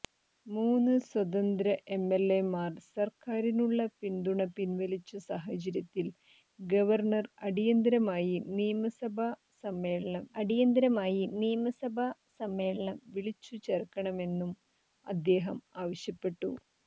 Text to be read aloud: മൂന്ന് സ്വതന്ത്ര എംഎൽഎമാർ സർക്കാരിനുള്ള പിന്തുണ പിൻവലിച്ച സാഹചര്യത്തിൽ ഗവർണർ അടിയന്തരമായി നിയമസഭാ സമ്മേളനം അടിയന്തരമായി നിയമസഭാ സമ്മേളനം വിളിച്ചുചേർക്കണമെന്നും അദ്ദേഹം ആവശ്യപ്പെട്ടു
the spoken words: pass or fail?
pass